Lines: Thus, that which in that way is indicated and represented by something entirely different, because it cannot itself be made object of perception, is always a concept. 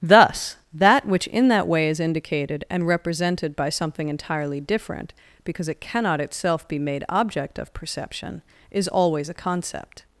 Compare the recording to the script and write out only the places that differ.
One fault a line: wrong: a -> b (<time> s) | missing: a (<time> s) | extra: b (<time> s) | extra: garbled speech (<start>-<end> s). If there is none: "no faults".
no faults